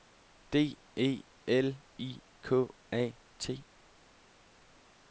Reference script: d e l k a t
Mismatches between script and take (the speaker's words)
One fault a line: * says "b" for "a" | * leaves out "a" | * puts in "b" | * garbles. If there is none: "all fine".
* puts in "i"